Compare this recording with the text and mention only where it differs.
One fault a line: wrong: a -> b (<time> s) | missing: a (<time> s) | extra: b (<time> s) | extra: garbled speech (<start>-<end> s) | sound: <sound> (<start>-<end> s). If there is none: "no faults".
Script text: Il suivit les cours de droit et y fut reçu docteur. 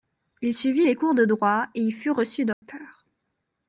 sound: dropout (2.5-2.6 s)